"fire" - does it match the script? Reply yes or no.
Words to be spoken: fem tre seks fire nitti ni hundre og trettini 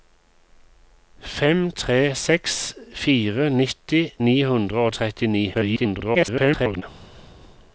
yes